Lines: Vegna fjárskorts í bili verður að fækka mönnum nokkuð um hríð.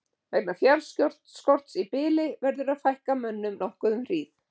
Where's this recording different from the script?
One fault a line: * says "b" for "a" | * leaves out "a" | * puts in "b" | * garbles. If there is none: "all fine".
all fine